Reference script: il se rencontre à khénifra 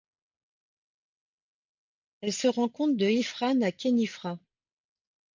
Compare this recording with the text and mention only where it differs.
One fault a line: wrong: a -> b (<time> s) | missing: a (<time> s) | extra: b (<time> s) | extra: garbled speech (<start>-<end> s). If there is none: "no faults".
wrong: il -> elle (2.2 s)
extra: de ifrane (3.0 s)